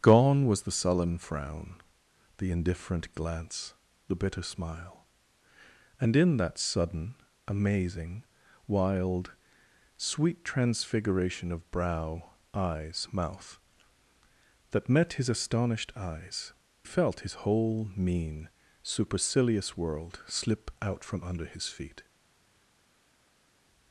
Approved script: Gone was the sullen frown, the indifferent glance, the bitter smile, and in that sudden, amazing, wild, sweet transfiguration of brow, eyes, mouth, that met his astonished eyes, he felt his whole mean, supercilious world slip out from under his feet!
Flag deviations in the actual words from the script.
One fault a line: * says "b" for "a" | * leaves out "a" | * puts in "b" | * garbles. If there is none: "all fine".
* leaves out "he"